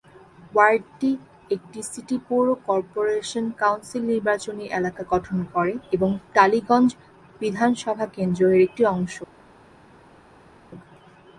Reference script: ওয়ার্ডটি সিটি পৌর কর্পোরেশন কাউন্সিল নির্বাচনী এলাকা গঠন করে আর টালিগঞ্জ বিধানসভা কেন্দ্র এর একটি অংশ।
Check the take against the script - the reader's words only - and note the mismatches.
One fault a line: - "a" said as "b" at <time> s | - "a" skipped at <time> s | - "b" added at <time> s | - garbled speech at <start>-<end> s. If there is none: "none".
- "একটি" added at 1.5 s
- "আর" said as "এবং" at 5.9 s